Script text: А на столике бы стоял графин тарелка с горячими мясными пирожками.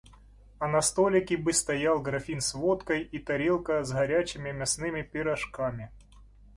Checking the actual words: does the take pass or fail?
fail